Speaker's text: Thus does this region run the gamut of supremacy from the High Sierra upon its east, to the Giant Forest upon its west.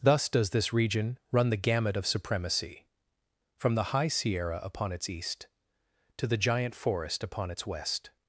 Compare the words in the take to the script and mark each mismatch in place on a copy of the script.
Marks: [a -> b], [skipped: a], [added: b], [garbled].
Thus does this region run the gamut of supremacy from the High Sierra upon its east, to the Giant Forest upon its west.